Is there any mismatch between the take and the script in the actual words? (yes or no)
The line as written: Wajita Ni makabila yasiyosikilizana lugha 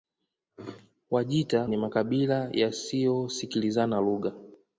no